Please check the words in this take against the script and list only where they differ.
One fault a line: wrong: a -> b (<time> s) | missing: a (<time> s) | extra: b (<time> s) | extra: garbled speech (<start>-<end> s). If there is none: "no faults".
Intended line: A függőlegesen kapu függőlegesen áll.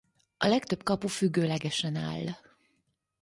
wrong: függőlegesen -> legtöbb (0.5 s)